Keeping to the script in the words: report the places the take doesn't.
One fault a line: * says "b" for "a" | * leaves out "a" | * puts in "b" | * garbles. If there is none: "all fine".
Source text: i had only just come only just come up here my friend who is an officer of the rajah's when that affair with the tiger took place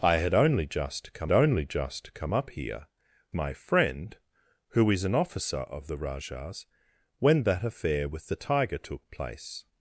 all fine